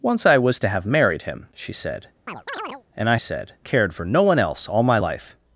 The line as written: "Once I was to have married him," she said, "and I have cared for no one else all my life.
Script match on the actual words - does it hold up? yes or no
no